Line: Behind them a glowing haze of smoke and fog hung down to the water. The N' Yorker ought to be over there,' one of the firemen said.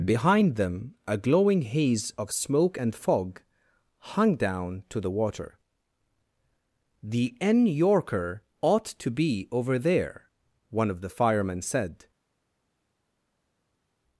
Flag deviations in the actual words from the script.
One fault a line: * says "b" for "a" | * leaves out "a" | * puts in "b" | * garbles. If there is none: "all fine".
all fine